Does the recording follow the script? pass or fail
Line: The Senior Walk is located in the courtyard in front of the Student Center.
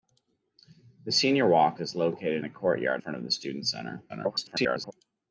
fail